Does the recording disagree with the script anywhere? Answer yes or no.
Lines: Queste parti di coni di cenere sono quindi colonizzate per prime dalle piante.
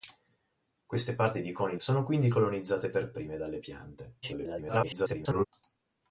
yes